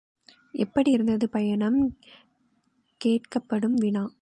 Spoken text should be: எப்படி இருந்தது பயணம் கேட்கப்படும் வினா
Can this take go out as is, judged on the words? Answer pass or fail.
pass